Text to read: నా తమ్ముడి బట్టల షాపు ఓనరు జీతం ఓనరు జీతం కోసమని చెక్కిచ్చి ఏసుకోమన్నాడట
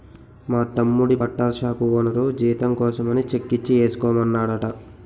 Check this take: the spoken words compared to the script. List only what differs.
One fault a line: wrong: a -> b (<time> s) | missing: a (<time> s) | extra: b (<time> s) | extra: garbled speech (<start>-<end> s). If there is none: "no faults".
wrong: నా -> మా (0.5 s)
missing: ఓనరు జీతం (2.7 s)